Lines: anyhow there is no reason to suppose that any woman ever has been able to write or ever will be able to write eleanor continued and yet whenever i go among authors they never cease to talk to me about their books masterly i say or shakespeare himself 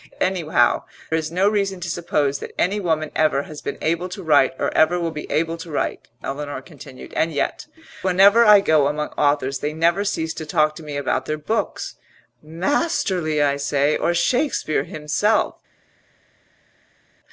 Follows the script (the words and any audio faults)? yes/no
no